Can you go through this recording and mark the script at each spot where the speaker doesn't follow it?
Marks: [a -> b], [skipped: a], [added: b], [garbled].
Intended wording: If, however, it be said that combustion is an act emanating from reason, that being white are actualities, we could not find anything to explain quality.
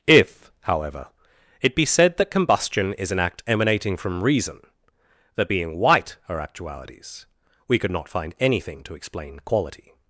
If, however, it be said that combustion is an act emanating from reason, that being white are actualities, we could not find anything to explain quality.